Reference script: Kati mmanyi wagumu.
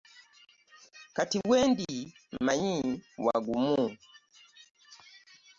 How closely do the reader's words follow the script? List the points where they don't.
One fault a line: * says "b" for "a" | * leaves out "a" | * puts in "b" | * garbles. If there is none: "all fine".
* puts in "wendi"